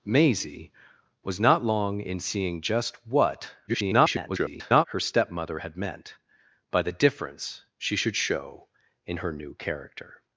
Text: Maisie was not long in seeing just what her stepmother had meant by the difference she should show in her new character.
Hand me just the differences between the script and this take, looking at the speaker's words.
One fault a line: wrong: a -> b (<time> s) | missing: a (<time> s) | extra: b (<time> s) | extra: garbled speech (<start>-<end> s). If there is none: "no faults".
extra: garbled speech (3.7-4.9 s)